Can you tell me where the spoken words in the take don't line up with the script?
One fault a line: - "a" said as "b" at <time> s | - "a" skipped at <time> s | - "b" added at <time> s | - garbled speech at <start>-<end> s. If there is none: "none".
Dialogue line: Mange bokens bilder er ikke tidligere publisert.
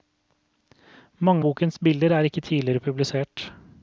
none